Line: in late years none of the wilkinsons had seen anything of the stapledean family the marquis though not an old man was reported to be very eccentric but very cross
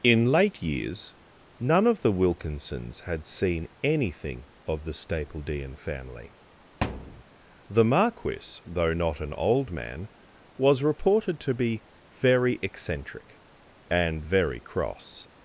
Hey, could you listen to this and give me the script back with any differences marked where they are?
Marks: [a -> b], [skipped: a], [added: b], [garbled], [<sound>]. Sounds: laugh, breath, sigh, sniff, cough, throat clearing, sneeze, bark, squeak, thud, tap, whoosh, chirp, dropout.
in late years none of the wilkinsons had seen anything of the stapledean family [thud] the marquis though not an old man was reported to be very eccentric [but -> and] very cross